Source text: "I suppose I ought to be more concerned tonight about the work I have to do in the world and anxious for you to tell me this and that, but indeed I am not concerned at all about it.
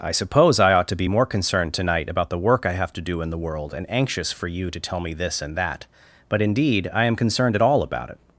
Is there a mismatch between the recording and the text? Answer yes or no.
yes